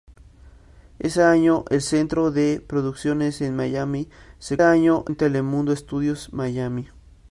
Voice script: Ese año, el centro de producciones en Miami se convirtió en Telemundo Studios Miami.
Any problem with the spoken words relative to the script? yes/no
yes